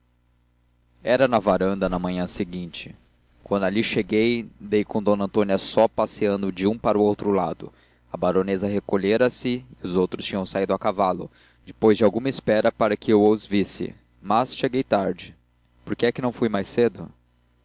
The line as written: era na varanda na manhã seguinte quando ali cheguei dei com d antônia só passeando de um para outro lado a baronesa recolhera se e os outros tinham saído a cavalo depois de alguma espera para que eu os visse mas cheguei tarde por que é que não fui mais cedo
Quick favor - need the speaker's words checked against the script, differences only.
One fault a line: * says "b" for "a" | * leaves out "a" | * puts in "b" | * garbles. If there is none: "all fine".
all fine